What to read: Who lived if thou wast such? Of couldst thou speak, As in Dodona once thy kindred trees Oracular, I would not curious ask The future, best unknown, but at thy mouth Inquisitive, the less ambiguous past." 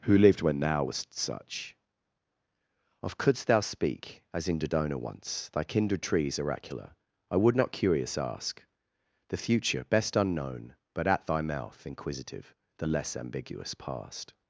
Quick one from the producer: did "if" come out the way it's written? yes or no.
no